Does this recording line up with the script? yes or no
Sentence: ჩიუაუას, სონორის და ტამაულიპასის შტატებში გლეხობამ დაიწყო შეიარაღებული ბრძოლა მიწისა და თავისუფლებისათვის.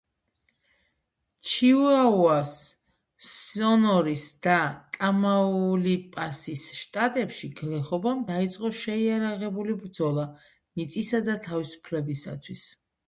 yes